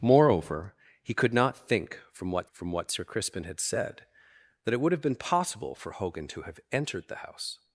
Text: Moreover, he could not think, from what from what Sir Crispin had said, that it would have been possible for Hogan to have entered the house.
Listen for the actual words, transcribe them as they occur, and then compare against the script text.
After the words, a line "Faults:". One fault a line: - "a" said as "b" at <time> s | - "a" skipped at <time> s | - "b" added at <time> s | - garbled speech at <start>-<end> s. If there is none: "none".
Moreover, he could not think, from what from what Sir Crispin had said, that it would have been possible for Hogan to have entered the house.
Faults:
none